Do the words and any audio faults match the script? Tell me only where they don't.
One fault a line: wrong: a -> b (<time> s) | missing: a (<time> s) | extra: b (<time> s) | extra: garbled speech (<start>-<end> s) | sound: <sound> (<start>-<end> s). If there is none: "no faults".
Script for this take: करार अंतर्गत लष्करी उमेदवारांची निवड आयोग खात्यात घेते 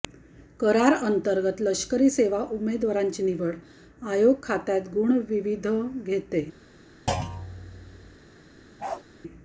extra: सेवा (2.1 s)
extra: गुण विविध (4.9 s)
sound: thud (7.1-8.2 s)
sound: bark (8.8-9.0 s)